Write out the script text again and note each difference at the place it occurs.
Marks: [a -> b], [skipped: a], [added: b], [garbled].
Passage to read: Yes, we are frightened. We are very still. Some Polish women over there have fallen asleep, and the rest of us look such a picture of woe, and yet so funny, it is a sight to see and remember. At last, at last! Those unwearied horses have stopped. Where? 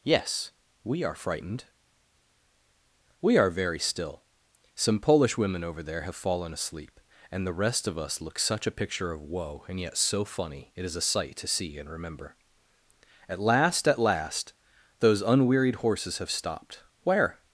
Yes, we are frightened. We are very still. Some Polish women over there have fallen asleep, and the rest of us look such a picture of woe, and yet so funny, it is a sight to see and remember. At last, at last! Those unwearied horses have stopped. Where?